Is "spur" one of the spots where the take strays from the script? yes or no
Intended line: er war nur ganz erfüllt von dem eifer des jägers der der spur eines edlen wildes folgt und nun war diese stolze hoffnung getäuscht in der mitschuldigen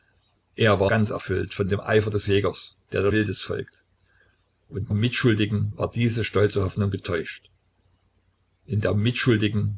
yes